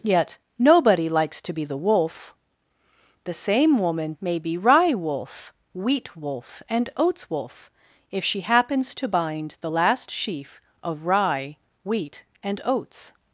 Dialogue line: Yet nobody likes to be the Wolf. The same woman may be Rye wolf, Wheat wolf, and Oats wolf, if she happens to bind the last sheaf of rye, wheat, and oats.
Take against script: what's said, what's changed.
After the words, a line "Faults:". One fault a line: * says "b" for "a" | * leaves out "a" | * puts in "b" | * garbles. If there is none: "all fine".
Yet nobody likes to be the Wolf. The same woman may be Rye wolf, Wheat wolf, and Oats wolf, if she happens to bind the last sheaf of rye, wheat, and oats.
Faults:
all fine